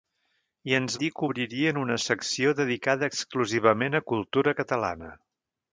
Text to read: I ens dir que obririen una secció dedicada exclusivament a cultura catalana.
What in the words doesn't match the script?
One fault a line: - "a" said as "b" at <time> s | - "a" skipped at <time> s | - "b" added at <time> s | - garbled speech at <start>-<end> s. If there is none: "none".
none